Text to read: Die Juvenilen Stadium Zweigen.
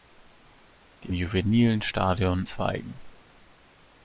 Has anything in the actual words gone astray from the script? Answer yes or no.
no